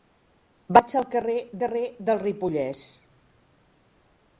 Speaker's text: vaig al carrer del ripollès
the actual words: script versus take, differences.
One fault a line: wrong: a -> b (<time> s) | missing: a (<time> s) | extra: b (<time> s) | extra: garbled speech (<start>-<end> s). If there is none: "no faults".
extra: carrer (1.6 s)